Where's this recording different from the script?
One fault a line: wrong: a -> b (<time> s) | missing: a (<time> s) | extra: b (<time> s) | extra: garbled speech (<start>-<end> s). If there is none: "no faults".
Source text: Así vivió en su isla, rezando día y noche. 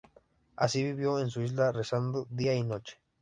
no faults